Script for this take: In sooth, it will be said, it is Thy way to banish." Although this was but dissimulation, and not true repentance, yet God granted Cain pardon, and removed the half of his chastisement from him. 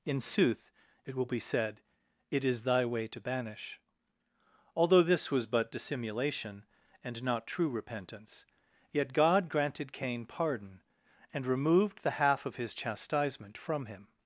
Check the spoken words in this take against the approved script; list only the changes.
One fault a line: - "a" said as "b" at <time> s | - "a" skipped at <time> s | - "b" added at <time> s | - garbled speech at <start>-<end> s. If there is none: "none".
none